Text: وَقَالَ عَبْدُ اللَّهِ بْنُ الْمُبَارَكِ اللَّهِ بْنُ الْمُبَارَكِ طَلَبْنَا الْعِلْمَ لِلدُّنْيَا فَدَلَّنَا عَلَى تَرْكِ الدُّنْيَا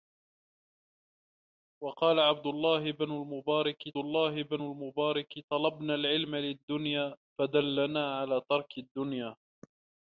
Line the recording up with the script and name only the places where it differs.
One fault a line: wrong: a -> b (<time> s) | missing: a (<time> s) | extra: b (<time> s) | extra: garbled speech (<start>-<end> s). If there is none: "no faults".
no faults